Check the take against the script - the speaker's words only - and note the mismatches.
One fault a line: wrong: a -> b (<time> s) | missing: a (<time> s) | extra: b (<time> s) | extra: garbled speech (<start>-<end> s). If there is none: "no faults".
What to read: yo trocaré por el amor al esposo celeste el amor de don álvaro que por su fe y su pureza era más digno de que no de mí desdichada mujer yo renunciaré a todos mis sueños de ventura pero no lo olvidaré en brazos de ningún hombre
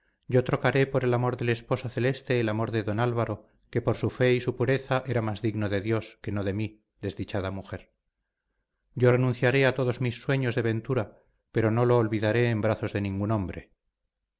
wrong: al -> del (1.4 s)
extra: dios (5.8 s)